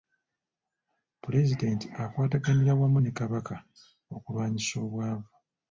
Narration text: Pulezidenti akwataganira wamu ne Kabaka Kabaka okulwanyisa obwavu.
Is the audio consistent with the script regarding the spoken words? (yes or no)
no